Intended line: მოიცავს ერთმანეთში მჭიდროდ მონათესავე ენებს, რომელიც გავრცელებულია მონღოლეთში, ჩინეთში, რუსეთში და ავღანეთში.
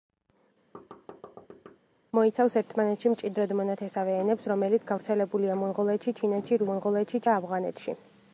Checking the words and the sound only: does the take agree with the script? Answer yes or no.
no